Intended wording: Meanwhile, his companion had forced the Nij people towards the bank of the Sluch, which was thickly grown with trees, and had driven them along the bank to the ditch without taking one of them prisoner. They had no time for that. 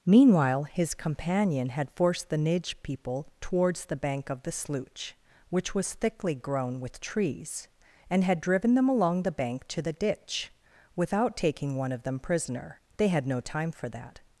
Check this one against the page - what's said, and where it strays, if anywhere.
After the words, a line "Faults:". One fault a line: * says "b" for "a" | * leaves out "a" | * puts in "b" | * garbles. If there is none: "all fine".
Meanwhile, his companion had forced the Nij people towards the bank of the Sluch, which was thickly grown with trees, and had driven them along the bank to the ditch without taking one of them prisoner. They had no time for that.
Faults:
all fine